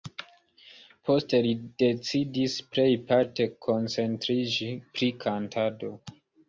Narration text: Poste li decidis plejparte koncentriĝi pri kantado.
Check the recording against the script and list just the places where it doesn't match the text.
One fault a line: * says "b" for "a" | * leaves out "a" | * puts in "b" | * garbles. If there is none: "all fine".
all fine